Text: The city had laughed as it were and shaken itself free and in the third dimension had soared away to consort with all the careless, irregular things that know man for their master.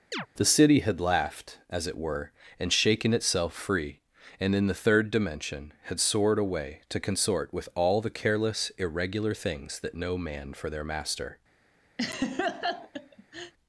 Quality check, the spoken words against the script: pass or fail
pass